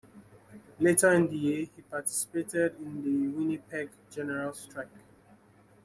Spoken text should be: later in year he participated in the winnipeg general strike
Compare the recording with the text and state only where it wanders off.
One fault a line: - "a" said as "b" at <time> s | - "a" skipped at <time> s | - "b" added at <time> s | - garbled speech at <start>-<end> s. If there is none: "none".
- "the" added at 1.3 s